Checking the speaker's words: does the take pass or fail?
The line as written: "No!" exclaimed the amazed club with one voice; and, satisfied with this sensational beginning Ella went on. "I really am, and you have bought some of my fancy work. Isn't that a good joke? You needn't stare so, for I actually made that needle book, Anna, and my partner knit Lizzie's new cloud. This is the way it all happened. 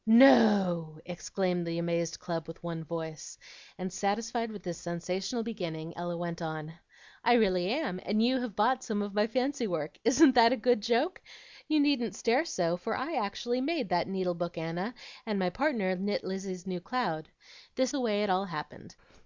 fail